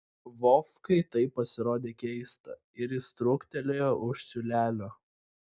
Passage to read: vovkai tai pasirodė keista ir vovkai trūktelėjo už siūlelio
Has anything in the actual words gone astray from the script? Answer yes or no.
yes